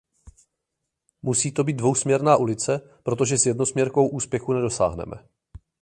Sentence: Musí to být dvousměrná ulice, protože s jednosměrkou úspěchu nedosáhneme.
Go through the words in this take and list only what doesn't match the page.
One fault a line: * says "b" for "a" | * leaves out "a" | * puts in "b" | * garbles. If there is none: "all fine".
all fine